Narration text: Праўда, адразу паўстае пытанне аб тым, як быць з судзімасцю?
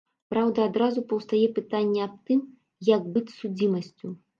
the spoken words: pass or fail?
pass